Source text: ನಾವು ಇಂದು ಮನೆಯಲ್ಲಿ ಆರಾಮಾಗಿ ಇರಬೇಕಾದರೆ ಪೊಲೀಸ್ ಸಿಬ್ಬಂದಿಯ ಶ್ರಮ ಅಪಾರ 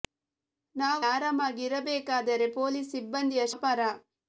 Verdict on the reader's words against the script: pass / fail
fail